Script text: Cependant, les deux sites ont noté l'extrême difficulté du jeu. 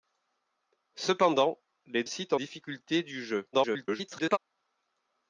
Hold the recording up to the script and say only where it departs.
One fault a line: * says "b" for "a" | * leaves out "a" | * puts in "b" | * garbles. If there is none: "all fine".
* leaves out "deux"
* leaves out "noté l'extrême"
* garbles